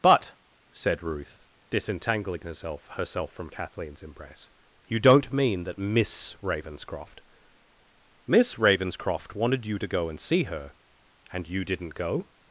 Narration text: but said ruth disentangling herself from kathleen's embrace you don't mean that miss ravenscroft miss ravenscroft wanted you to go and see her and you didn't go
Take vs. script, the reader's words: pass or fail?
fail